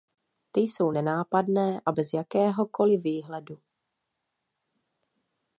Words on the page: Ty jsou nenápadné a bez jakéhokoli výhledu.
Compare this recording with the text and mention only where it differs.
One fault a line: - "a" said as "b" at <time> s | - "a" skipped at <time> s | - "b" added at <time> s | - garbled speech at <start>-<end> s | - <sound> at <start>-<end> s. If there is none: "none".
none